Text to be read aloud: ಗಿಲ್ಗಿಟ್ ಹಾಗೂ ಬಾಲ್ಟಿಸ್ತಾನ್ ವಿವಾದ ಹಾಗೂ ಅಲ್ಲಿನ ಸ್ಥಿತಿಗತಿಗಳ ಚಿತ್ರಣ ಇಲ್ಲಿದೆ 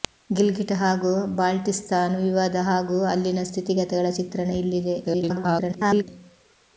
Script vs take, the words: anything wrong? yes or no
yes